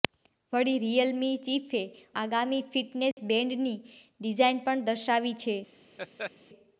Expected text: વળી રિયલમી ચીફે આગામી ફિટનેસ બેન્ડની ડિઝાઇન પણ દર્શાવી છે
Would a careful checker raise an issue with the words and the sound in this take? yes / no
yes